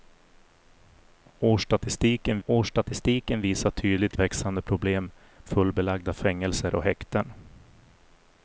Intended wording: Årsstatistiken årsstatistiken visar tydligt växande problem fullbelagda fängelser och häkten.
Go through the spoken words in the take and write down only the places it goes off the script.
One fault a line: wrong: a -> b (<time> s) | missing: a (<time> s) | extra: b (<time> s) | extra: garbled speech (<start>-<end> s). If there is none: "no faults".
no faults